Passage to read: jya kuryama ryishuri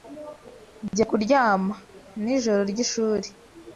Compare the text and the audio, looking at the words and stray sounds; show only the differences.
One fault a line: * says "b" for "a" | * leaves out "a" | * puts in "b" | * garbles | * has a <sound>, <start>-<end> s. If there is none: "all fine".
* puts in "nijoro"